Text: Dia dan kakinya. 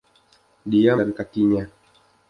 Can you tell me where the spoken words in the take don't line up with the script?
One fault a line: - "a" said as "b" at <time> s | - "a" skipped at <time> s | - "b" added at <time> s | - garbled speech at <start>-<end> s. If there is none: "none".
none